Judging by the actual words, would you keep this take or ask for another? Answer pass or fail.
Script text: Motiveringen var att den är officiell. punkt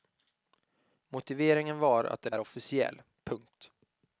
pass